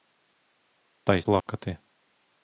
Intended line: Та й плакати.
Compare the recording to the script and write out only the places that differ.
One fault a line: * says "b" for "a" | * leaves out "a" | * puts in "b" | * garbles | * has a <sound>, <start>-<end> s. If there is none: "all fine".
* has a dropout, 1.4-1.5 s